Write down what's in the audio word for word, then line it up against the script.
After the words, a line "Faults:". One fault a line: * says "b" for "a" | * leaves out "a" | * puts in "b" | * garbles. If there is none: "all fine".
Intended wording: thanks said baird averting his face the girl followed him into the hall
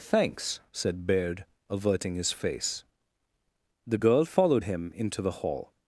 thanks said baird averting his face the girl followed him into the hall
Faults:
all fine